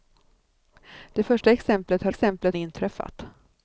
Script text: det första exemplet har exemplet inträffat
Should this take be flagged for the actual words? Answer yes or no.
no